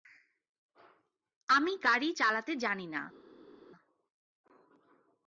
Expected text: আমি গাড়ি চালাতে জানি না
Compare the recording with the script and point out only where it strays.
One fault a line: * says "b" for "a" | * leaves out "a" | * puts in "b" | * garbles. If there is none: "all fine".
all fine